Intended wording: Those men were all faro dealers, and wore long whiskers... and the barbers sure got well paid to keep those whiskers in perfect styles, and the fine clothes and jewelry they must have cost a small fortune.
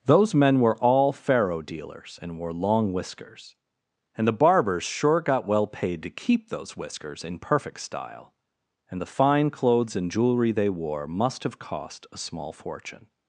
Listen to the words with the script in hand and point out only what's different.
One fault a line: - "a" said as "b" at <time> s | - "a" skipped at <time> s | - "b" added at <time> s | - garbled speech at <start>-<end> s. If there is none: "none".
- "styles" said as "style" at 7.8 s
- "wore" added at 10.7 s